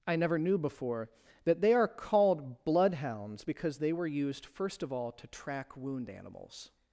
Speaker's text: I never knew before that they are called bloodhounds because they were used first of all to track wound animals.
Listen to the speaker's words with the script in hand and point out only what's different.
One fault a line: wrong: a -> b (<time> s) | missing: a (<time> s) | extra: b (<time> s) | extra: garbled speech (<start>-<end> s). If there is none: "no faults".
no faults